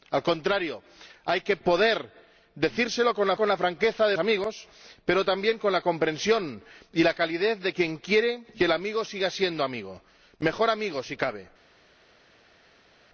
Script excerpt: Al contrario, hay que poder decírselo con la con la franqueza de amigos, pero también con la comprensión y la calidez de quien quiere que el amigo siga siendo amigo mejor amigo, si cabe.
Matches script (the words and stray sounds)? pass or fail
pass